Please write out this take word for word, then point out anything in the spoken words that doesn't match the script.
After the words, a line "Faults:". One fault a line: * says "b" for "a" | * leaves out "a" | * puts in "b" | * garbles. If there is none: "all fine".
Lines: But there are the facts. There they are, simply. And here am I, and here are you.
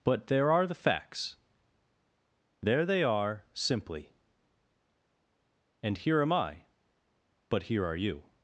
But there are the facts. There they are, simply. And here am I, but here are you.
Faults:
* says "but" for "and"